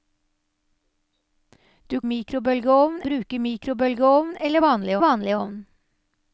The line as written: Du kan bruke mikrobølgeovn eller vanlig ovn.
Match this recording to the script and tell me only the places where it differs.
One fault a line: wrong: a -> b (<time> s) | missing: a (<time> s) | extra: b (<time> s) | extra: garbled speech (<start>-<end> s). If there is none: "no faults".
wrong: kan -> mikrobølgeovn (2.0 s)
extra: vanlig (5.0 s)